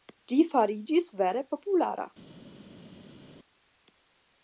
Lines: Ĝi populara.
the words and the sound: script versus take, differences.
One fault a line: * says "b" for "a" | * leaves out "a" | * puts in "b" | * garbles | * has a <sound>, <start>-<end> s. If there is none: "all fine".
* puts in "fariĝis vere"